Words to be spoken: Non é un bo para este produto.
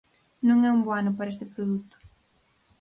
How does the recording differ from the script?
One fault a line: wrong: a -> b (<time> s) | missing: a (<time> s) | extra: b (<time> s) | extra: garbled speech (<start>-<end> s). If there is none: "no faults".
extra: ano (1.0 s)